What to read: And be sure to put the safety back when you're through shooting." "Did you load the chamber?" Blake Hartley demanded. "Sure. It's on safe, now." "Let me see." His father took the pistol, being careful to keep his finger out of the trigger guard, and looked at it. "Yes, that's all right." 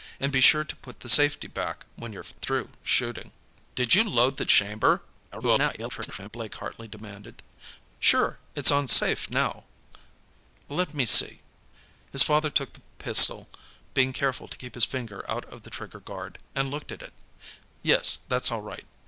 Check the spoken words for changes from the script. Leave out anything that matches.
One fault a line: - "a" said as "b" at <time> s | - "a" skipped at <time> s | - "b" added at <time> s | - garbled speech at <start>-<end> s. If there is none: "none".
- garbled speech at 5.3-6.3 s